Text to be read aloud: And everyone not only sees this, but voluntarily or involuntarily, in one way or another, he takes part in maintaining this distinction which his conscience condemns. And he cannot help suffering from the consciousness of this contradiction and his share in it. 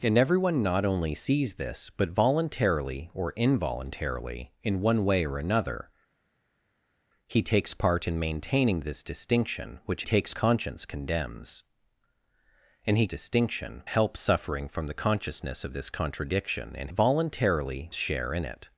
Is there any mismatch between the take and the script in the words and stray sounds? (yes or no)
yes